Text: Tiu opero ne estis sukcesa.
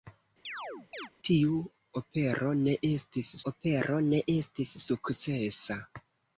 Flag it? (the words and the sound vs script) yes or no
yes